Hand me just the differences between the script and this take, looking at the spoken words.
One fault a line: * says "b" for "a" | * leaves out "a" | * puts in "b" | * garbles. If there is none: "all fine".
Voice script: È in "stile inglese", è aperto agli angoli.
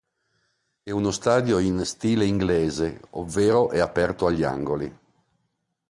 * puts in "uno stadio"
* puts in "ovvero"